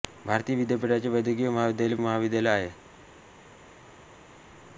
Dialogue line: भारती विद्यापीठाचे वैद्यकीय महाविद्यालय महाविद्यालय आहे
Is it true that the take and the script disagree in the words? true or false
false